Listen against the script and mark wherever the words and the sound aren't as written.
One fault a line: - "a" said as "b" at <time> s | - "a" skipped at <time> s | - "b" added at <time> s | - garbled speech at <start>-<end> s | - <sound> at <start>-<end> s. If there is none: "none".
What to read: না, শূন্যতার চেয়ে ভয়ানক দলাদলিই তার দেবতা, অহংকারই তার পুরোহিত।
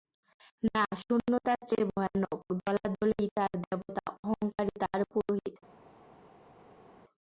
none